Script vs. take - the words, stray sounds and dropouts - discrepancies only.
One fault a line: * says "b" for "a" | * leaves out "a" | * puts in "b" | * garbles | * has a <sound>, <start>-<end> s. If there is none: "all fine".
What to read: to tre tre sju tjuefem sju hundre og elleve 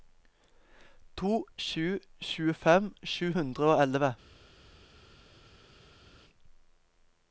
* leaves out "tre tre"